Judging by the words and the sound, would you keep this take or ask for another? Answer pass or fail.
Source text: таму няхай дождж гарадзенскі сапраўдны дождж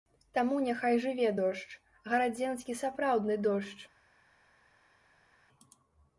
fail